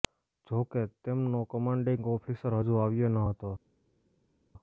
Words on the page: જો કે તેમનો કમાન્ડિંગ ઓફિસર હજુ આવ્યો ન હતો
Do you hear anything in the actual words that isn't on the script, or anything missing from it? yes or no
no